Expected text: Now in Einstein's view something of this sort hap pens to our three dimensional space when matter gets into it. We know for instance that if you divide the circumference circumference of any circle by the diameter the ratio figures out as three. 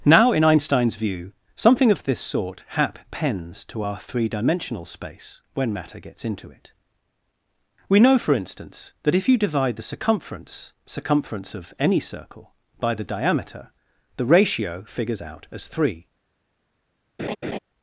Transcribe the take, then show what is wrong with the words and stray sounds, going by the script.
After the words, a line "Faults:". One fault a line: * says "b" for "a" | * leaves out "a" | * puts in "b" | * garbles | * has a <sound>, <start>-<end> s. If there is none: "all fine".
Now in Einstein's view something of this sort hap pens to our three dimensional space when matter gets into it. We know for instance that if you divide the circumference circumference of any circle by the diameter the ratio figures out as three.
Faults:
* has a laugh, 17.2-17.6 s